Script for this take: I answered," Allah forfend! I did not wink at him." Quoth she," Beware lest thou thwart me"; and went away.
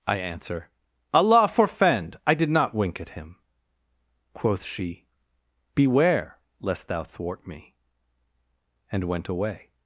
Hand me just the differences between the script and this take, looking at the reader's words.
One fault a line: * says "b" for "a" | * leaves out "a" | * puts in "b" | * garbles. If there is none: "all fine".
* says "answer" for "answered"